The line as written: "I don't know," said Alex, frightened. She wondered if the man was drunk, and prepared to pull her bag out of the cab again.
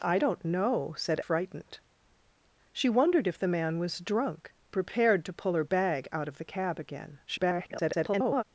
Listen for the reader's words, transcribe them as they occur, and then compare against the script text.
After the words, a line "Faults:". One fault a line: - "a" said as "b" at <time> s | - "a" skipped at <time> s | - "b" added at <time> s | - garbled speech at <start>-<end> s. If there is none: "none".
"I don't know," said Frightened. She wondered if the man was drunk, prepared to pull her bag out of the cab again. [garbled]
Faults:
- "Alex" skipped at 1.2 s
- "and" skipped at 4.5 s
- garbled speech at 7.3-8.4 s